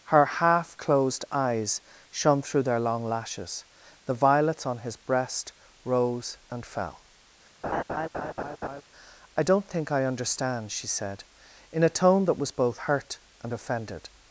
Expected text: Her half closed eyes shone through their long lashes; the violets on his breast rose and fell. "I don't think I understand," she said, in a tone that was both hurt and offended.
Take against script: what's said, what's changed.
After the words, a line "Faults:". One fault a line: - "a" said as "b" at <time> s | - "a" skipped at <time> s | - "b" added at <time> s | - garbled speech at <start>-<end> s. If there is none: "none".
Her half closed eyes shone through their long lashes; the violets on his breast rose and fell. "I don't think I understand," she said, in a tone that was both hurt and offended.
Faults:
none